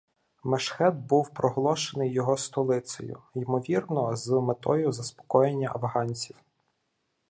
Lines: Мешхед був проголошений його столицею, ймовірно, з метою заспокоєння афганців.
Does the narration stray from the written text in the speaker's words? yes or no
no